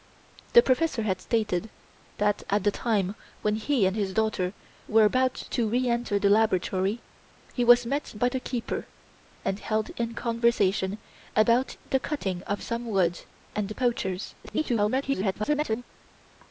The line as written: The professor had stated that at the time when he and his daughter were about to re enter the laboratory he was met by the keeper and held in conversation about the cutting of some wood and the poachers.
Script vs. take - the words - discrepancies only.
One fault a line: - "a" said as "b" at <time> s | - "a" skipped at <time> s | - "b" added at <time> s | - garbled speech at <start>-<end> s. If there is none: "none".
- garbled speech at 14.4-15.8 s